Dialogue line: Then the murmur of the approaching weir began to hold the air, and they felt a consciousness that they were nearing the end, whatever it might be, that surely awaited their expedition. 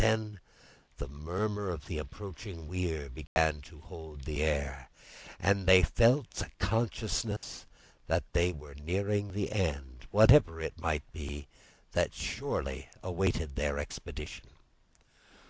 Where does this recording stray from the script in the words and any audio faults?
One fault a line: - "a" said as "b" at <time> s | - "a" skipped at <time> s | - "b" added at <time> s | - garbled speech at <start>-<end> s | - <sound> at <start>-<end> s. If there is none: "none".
- dropout at 3.3-3.4 s
- dropout at 7.4-7.4 s